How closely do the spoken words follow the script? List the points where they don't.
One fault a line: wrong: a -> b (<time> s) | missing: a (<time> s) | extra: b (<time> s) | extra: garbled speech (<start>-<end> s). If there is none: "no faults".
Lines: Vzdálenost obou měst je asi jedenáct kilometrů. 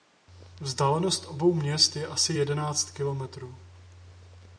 no faults